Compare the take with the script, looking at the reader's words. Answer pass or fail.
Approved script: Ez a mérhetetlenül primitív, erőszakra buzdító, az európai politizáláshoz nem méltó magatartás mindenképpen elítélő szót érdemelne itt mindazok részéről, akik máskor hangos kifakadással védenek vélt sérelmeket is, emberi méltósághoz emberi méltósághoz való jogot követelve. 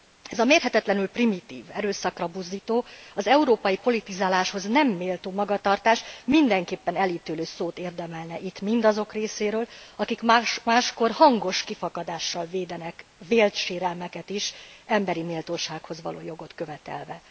fail